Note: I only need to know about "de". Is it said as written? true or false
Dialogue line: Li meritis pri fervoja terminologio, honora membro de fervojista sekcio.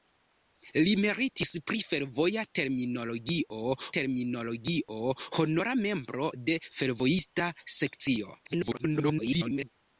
true